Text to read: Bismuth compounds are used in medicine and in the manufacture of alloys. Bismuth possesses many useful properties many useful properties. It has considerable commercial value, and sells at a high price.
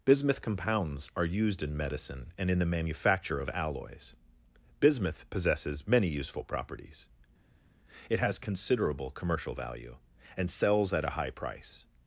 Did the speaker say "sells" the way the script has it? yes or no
yes